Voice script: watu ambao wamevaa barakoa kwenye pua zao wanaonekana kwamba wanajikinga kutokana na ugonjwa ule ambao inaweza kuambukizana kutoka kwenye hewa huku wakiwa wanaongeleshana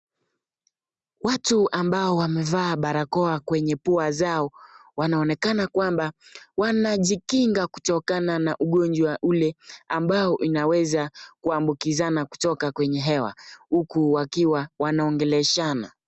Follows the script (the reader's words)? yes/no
yes